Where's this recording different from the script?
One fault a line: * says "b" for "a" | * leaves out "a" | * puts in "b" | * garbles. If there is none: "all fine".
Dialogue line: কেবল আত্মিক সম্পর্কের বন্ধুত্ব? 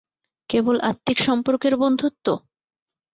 all fine